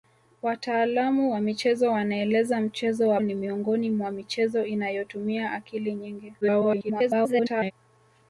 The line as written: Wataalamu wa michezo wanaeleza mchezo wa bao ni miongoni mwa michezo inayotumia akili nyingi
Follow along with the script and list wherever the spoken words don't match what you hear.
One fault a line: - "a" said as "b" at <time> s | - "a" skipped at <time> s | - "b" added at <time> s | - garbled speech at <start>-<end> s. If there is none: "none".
- "bao" skipped at 3.2 s
- garbled speech at 6.4-7.7 s